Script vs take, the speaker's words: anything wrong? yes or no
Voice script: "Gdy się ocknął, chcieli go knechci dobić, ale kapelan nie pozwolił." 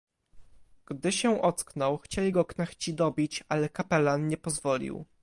no